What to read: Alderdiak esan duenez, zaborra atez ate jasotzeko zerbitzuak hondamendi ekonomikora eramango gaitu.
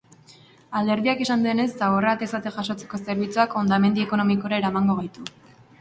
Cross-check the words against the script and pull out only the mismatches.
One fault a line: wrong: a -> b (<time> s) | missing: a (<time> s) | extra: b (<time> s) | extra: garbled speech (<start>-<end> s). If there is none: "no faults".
no faults